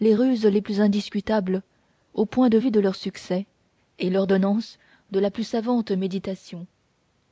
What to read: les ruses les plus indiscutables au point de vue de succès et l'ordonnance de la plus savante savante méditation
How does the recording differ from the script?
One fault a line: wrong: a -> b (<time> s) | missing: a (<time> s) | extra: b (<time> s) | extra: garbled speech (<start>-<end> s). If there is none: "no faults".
extra: leur (2.8 s)
missing: savante (5.9 s)